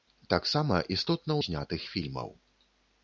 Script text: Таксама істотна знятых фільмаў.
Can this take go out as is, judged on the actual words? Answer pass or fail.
pass